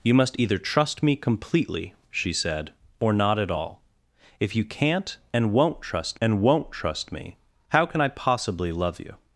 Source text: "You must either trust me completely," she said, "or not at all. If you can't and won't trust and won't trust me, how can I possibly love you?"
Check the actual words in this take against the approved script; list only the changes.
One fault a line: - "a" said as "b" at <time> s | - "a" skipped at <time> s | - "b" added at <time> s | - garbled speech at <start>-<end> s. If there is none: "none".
none